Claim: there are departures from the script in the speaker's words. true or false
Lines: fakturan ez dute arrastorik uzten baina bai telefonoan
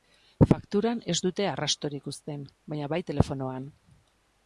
false